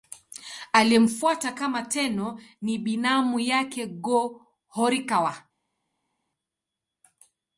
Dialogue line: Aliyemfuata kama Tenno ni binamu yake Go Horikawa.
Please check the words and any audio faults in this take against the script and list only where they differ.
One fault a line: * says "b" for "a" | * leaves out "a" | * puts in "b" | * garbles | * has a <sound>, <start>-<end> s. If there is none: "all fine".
all fine